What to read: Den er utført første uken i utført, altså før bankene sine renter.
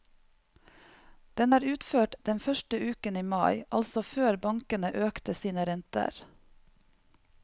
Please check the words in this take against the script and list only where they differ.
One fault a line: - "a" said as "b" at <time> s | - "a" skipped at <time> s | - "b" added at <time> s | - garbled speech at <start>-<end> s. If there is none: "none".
- "den" added at 2.3 s
- "utført" said as "mai" at 3.3 s
- "økte" added at 5.1 s